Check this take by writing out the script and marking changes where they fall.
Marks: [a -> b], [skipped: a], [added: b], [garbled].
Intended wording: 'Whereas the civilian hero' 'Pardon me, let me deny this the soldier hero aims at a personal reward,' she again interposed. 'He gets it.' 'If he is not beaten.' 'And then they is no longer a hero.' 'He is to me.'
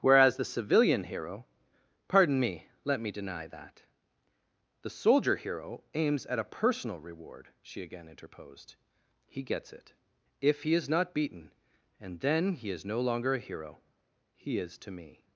'Whereas the civilian hero' 'Pardon me, let me deny [this -> that] the soldier hero aims at a personal reward,' she again interposed. 'He gets it.' 'If he is not beaten.' 'And then [they -> he] is no longer a hero.' 'He is to me.'